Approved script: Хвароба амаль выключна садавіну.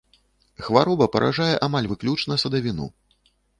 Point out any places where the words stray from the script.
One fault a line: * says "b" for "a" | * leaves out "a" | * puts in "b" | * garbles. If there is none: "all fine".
* puts in "паражае"